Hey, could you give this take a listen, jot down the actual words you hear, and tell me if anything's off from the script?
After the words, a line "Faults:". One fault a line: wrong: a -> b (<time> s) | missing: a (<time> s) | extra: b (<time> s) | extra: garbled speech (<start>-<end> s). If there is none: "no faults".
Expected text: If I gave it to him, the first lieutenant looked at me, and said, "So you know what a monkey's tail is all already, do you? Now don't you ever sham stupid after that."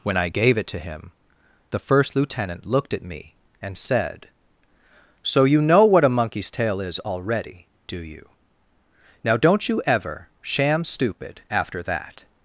When I gave it to him, the first lieutenant looked at me, and said, "So you know what a monkey's tail is already, do you? Now don't you ever sham stupid after that."
Faults:
wrong: If -> When (0.0 s)
missing: all (7.0 s)